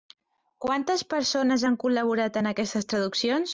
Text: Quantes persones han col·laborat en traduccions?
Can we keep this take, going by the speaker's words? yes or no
no